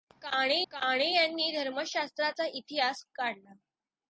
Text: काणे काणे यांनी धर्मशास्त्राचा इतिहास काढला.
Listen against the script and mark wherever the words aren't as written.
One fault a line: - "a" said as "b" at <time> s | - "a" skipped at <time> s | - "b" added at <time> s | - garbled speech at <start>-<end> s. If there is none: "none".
none